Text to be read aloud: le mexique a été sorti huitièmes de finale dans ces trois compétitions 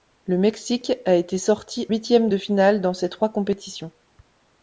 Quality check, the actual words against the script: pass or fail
pass